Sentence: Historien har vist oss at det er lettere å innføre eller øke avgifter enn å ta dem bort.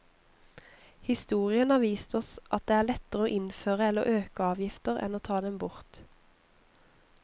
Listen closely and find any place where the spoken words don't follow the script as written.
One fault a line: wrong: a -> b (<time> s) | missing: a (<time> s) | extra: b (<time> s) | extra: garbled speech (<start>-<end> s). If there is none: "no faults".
no faults